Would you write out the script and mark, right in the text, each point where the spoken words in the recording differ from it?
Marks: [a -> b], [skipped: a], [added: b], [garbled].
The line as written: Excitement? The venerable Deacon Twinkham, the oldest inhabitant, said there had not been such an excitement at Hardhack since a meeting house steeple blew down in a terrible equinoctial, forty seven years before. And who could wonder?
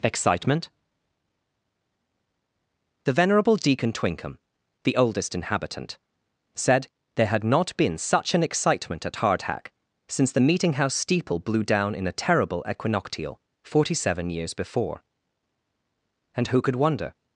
Excitement? The venerable Deacon Twinkham, the oldest inhabitant, said there had not been such an excitement at Hardhack since [a -> the] meeting house steeple blew down in a terrible equinoctial, forty seven years before. And who could wonder?